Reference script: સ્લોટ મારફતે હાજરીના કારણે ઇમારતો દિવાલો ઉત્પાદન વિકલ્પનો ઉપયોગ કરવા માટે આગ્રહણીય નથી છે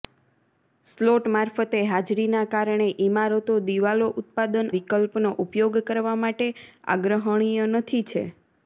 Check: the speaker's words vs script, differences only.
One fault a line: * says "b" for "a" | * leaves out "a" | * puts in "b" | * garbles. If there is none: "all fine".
all fine